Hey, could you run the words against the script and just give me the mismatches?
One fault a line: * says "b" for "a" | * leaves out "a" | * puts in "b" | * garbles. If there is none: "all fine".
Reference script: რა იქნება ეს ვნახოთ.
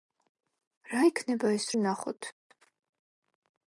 all fine